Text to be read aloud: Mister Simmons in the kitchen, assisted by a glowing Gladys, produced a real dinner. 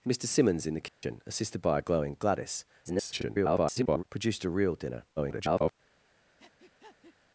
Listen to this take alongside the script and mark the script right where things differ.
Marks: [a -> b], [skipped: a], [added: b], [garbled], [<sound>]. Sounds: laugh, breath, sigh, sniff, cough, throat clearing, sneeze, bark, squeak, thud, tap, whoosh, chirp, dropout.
Mister Simmons in the kitchen, [dropout] assisted by a glowing Gladys, [garbled] produced a real dinner. [garbled] [breath]